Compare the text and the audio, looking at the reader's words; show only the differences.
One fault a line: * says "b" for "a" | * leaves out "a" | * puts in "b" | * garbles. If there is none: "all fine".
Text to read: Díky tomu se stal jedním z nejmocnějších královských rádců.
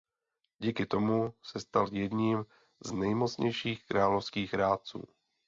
all fine